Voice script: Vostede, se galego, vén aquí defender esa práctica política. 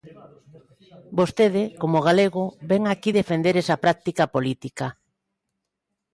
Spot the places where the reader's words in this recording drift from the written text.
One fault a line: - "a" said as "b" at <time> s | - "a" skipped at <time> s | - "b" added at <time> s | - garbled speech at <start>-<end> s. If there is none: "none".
- "se" said as "como" at 1.8 s